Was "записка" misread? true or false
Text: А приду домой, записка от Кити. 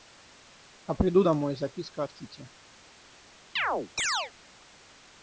false